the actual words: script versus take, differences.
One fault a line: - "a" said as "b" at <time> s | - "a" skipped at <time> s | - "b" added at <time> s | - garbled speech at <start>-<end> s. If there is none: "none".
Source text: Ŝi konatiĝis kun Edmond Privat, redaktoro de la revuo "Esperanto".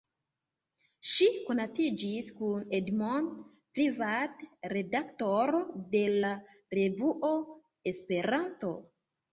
none